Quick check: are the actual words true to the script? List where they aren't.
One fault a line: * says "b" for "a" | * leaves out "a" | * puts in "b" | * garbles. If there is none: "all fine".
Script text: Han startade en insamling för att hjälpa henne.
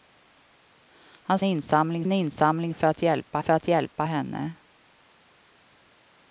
* says "insamling" for "startade"
* puts in "för att hjälpa"